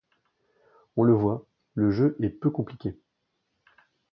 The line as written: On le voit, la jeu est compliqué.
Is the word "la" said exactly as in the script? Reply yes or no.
no